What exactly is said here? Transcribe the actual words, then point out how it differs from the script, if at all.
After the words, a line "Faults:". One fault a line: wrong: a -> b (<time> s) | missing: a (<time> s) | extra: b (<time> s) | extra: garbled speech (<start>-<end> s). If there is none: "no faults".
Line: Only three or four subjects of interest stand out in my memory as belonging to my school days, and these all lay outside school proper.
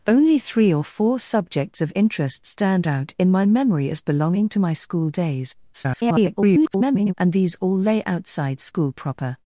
Only three or four subjects of interest stand out in my memory as belonging to my school days, [garbled] and these all lay outside school proper.
Faults:
extra: garbled speech (5.7-7.1 s)